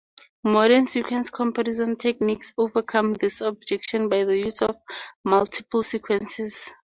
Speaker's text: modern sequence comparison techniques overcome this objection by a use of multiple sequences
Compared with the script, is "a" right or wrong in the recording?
wrong